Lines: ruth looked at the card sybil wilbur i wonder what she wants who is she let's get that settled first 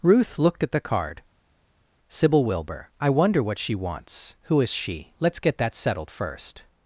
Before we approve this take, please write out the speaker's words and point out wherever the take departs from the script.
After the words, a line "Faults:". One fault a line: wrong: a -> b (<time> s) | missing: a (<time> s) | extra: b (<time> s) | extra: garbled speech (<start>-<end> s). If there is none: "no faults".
ruth looked at the card sybil wilbur i wonder what she wants who is she let's get that settled first
Faults:
no faults